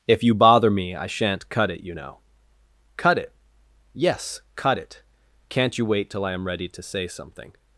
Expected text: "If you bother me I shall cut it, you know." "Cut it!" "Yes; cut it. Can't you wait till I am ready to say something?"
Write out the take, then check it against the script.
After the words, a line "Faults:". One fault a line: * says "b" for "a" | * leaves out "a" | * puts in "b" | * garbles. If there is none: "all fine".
"If you bother me I shan't cut it, you know." "Cut it!" "Yes; cut it. Can't you wait till I am ready to say something?"
Faults:
* says "shan't" for "shall"